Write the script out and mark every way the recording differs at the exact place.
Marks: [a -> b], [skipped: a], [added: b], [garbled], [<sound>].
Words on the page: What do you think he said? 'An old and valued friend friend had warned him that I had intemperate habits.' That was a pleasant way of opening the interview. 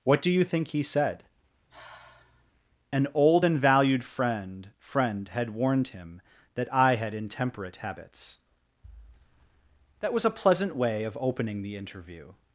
What do you think he said? [sigh] 'An old and valued friend friend had warned him that I had intemperate habits.' That was a pleasant way of opening the interview.